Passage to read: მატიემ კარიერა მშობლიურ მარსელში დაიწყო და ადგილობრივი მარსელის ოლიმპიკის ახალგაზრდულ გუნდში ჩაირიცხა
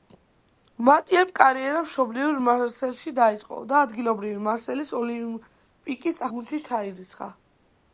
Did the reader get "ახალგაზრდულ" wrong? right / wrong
wrong